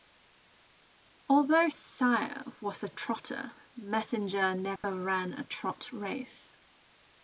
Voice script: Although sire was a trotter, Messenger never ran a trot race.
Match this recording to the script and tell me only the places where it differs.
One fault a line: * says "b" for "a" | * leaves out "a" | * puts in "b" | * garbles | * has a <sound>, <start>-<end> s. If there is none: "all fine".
* has a dropout, 4.8-4.8 s